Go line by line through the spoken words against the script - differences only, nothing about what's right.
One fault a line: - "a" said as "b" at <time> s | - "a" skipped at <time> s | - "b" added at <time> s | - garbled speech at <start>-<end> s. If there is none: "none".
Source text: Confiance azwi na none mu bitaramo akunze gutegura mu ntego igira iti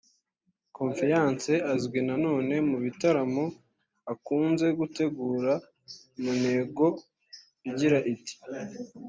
none